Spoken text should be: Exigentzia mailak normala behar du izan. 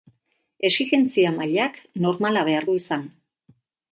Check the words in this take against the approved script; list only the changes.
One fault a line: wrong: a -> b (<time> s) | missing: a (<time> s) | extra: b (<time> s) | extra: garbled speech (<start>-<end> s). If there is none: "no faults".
no faults